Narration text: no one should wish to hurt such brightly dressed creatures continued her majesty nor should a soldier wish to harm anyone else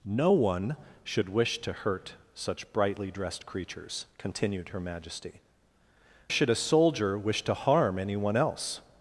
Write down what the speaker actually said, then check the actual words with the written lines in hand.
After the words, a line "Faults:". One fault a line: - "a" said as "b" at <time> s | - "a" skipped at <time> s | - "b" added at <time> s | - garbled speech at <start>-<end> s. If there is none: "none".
no one should wish to hurt such brightly dressed creatures continued her majesty should a soldier wish to harm anyone else
Faults:
- "nor" skipped at 5.4 s